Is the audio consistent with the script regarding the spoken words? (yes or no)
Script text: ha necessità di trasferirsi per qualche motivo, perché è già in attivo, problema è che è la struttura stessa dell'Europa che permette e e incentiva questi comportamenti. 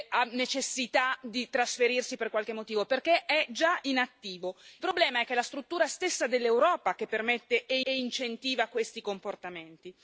yes